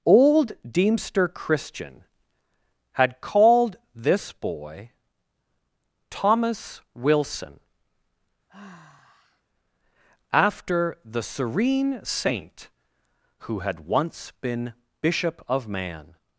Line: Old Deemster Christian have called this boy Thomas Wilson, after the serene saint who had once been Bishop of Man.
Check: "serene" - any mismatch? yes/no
no